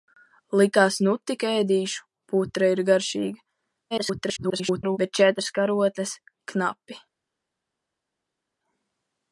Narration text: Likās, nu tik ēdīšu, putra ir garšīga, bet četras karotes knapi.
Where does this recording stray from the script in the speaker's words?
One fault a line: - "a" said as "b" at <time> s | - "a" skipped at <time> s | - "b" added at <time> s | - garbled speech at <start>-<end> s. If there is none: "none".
- garbled speech at 3.9-5.0 s